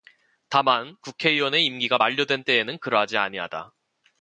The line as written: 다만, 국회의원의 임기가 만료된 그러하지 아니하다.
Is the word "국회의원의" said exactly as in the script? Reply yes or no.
yes